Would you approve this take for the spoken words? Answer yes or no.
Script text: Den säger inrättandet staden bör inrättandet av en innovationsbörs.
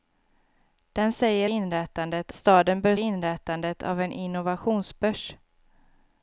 yes